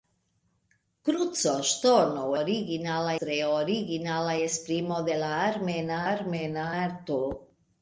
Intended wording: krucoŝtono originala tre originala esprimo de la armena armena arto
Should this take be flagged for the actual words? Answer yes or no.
no